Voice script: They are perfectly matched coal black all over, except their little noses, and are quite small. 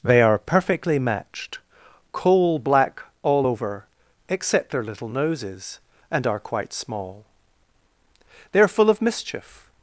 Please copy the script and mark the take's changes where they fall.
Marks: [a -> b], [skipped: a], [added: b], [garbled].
They are perfectly matched coal black all over, except their little noses, and are quite small. [added: They are full of mischief]